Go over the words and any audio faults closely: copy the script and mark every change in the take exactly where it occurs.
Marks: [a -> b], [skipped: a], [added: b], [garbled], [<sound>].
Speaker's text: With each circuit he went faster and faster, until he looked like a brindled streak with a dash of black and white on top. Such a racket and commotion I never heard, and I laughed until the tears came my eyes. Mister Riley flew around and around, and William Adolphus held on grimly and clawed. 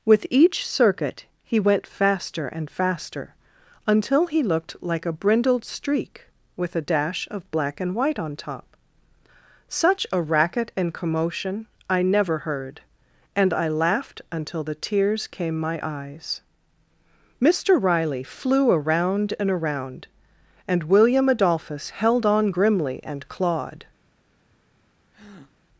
With each circuit he went faster and faster, until he looked like a brindled streak with a dash of black and white on top. Such a racket and commotion I never heard, and I laughed until the tears came my eyes. Mister Riley flew around and around, and William Adolphus held on grimly and clawed. [breath]